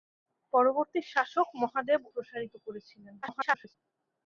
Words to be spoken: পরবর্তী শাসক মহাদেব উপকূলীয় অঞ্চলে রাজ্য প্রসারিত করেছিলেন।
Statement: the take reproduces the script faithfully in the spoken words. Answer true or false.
false